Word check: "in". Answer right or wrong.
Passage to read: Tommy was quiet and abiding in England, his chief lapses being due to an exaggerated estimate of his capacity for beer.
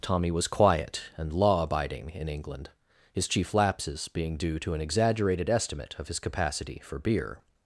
right